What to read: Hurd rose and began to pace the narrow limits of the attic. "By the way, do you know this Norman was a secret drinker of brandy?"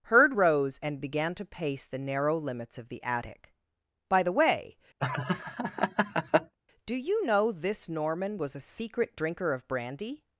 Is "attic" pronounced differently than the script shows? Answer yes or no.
no